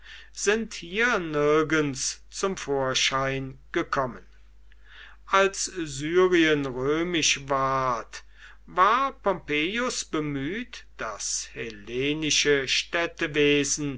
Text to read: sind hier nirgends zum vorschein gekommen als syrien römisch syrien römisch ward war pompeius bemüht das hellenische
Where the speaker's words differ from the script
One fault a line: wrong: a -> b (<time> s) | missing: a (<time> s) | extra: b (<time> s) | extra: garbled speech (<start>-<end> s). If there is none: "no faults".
missing: syrien römisch (7.5 s)